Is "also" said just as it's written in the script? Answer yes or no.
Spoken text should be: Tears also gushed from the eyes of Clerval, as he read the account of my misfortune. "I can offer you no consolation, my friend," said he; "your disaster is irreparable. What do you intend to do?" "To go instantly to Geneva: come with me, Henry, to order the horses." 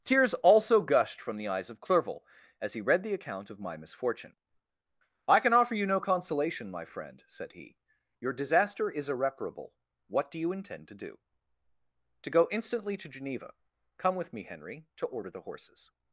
yes